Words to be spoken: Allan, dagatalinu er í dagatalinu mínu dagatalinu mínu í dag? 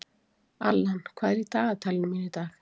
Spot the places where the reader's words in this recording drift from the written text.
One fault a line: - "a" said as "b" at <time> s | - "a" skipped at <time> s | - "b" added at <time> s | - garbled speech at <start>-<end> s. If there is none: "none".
- "dagatalinu" said as "hvað" at 1.2 s
- "dagatalinu mínu" skipped at 2.3 s